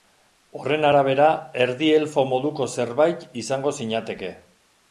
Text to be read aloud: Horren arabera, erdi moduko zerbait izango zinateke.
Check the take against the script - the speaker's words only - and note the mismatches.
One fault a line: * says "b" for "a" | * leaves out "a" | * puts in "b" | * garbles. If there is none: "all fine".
* puts in "elfo"